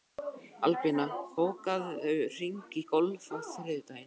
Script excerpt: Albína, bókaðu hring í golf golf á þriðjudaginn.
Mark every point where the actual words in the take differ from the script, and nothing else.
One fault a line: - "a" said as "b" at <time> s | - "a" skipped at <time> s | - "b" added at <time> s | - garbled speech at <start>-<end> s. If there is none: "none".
- "golf" skipped at 3.3 s